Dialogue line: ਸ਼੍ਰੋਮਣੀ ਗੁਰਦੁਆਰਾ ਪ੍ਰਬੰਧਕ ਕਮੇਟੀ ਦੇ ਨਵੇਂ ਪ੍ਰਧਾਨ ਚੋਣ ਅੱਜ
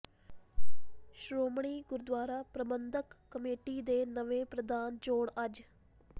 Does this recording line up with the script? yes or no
yes